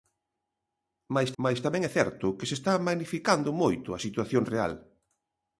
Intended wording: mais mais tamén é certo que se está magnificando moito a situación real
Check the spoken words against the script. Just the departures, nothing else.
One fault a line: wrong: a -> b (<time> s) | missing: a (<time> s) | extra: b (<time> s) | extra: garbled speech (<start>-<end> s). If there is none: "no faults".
no faults